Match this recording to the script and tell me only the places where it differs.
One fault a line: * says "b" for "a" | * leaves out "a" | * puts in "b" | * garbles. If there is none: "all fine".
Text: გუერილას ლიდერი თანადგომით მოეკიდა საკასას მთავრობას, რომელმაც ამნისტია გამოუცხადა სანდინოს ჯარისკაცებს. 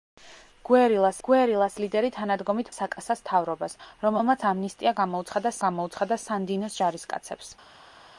* puts in "გუერილას"
* leaves out "მოეკიდა"
* puts in "გამოუცხადა"